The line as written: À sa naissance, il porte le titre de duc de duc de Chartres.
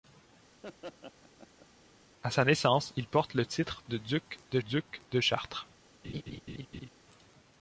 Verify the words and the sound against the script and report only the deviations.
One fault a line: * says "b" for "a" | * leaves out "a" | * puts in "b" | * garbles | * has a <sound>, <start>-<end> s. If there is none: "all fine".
* has a laugh, 0.6-1.7 s
* has a laugh, 6.0-6.9 s